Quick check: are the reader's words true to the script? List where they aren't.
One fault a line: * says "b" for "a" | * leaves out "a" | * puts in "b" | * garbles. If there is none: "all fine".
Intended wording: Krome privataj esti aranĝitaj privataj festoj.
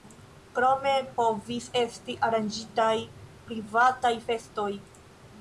* says "povis" for "privataj"